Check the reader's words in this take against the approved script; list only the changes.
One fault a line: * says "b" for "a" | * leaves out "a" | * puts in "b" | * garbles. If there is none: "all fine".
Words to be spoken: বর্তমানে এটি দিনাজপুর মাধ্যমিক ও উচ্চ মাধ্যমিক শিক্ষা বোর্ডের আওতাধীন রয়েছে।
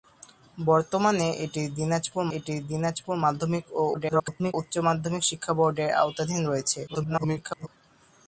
* puts in "এটি দিনাজপুর"
* garbles
* garbles